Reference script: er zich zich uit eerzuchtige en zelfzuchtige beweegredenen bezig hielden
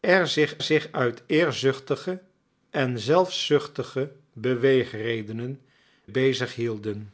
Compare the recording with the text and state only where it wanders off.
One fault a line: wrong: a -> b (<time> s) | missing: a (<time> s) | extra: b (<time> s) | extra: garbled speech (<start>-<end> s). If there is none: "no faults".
no faults